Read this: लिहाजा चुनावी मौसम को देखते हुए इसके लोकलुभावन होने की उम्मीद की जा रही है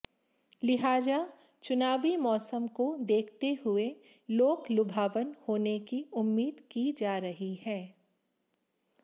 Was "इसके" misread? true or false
true